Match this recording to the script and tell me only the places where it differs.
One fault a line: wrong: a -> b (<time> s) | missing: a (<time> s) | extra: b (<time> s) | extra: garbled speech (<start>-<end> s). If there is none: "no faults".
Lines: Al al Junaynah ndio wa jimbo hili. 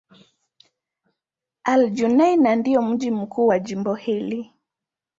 missing: al (1.9 s)
extra: mji mkuu (2.8 s)